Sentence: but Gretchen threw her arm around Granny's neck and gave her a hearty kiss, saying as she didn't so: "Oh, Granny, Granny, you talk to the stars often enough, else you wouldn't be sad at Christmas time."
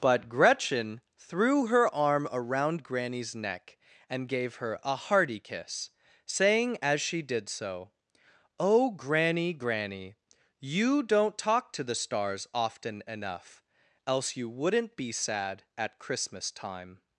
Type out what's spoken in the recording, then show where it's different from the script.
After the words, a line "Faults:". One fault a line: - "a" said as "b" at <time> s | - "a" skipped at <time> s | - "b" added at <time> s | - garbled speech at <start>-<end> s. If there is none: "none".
but Gretchen threw her arm around Granny's neck and gave her a hearty kiss, saying as she did so: "Oh, Granny, Granny, you don't talk to the stars often enough, else you wouldn't be sad at Christmas time."
Faults:
- "didn't" said as "did" at 7.2 s
- "don't" added at 11.0 s